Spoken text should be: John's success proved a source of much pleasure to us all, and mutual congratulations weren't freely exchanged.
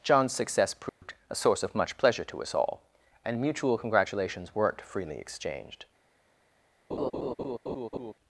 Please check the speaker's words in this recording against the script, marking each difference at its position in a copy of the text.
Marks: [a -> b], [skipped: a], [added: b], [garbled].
John's success proved a source of much pleasure to us all, and mutual congratulations weren't freely exchanged.